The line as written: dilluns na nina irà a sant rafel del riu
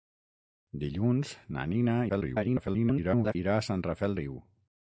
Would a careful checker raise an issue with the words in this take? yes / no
yes